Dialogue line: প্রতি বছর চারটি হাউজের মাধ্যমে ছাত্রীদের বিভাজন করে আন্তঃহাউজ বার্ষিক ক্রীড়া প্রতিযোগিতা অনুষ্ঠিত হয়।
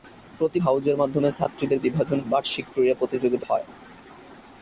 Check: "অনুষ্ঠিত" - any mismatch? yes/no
yes